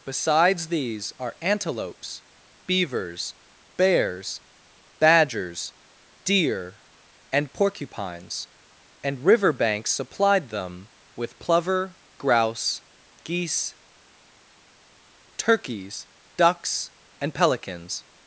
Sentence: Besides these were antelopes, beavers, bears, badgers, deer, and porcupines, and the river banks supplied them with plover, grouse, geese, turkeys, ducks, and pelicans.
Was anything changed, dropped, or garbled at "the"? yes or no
yes